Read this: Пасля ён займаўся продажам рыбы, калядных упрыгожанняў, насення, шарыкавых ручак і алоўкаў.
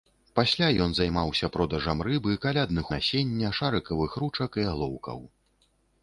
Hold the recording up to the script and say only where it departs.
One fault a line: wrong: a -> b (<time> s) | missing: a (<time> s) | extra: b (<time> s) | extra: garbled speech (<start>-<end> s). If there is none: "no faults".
missing: упрыгожанняў (2.9 s)